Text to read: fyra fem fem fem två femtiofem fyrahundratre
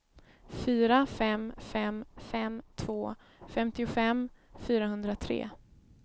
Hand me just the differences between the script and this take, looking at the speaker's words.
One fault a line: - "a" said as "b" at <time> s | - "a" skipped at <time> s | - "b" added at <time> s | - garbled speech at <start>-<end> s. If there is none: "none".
none